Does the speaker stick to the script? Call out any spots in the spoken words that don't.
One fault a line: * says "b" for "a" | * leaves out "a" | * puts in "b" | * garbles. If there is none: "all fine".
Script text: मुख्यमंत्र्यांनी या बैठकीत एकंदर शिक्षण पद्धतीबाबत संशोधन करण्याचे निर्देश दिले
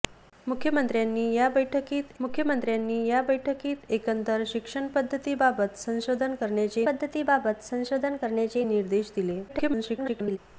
* puts in "मुख्यमंत्र्यांनी या बैठकीत"
* puts in "पद्धतीबाबत संशोधन करण्याचे"
* garbles